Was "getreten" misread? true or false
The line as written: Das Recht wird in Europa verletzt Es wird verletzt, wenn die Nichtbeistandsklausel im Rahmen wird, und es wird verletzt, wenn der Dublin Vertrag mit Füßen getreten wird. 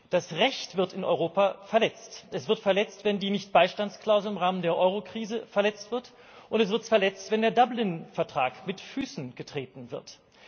false